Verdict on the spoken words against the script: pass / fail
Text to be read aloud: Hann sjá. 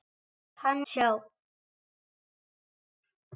pass